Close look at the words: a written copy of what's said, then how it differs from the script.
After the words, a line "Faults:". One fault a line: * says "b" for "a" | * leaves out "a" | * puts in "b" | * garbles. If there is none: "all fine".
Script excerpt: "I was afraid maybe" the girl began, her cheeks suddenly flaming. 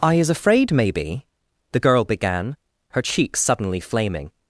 "I is afraid maybe" the girl began, her cheeks suddenly flaming.
Faults:
* says "is" for "was"